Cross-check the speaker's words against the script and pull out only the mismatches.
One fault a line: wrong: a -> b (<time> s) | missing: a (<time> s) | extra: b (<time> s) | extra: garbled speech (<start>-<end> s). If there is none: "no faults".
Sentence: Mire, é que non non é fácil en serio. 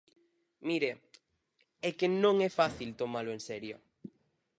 missing: non (2.4 s)
extra: tomalo (3.0 s)